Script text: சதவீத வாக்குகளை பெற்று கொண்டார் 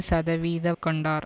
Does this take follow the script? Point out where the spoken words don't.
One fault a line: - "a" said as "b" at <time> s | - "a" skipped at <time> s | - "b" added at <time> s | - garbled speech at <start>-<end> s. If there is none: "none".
- "வாக்குகளை பெற்று" skipped at 0.7 s